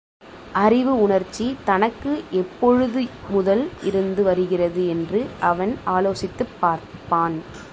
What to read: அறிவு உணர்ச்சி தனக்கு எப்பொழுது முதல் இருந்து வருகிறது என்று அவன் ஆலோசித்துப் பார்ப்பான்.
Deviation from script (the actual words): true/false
false